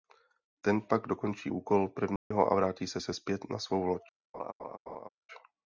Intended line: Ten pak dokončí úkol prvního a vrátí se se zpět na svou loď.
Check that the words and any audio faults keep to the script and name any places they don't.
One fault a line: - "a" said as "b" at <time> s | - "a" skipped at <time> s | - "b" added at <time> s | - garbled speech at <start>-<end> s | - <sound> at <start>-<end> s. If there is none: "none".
- dropout at 2.2-2.3 s
- laugh at 4.3-5.1 s